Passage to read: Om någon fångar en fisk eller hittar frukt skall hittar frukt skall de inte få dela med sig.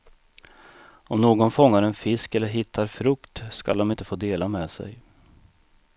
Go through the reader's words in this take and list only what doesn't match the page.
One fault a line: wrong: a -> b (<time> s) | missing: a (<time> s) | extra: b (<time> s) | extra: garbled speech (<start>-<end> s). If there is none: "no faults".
missing: hittar frukt skall (3.8 s)